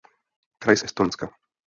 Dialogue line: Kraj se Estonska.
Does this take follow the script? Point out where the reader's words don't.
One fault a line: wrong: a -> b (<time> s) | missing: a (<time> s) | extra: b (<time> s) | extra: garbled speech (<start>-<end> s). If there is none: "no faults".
no faults